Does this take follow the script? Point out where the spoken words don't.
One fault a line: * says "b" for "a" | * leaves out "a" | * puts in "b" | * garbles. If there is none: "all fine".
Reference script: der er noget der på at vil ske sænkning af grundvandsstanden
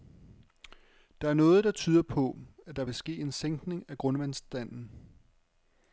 * puts in "tyder"
* puts in "der"
* puts in "en"